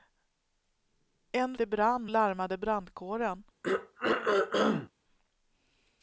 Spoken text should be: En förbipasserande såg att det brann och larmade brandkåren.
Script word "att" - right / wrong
wrong